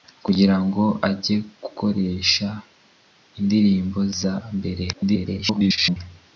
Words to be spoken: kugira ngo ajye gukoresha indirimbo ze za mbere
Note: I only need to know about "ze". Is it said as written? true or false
false